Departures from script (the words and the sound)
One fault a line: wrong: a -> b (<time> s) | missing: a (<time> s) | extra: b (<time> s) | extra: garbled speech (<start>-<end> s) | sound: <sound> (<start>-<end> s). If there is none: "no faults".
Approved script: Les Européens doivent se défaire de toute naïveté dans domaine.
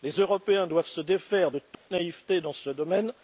sound: dropout (1.7-1.9 s)
extra: ce (2.5 s)